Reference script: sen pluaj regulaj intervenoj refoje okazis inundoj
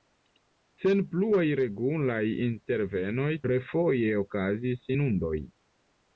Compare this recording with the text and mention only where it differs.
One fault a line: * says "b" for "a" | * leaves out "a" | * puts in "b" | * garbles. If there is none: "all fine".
all fine